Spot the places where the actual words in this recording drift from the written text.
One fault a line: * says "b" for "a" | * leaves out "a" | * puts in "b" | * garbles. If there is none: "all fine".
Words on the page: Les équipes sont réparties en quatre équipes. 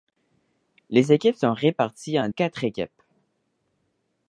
all fine